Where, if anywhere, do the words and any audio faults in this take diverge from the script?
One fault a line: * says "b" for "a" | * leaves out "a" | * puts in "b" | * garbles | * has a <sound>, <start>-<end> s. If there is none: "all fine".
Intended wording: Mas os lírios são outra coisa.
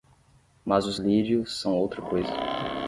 all fine